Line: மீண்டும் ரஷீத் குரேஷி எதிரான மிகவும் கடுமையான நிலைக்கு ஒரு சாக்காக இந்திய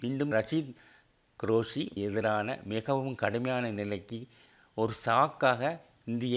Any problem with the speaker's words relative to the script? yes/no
no